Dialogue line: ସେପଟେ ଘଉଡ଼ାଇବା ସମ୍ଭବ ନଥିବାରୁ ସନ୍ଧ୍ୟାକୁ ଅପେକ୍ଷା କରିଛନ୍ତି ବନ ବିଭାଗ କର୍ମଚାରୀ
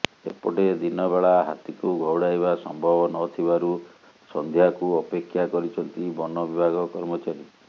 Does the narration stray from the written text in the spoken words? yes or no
yes